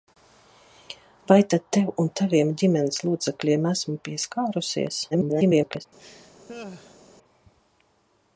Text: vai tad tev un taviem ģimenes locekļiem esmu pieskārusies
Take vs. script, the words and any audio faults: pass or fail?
fail